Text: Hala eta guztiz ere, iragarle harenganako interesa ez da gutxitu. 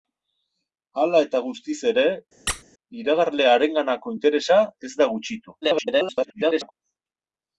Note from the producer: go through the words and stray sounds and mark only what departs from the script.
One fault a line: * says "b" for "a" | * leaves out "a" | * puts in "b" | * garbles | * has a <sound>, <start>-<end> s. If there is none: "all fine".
* has a squeak, 2.5-2.6 s
* garbles